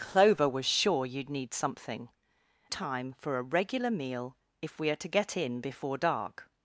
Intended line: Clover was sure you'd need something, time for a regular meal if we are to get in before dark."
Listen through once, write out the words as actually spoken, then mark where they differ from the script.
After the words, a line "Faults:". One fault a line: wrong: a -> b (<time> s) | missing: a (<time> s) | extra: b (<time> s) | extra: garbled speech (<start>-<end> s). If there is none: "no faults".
Clover was sure you'd need something, time for a regular meal if we are to get in before dark."
Faults:
no faults